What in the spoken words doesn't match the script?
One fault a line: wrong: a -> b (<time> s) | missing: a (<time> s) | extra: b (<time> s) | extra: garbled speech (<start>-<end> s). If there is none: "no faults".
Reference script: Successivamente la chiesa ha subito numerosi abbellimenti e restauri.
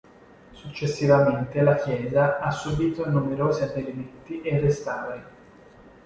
no faults